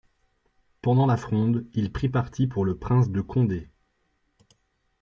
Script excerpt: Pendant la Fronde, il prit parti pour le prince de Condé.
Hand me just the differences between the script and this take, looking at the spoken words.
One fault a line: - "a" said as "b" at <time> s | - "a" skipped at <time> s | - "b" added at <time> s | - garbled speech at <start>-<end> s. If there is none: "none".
none